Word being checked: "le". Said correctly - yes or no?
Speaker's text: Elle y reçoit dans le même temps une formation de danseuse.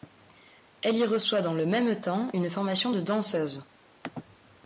yes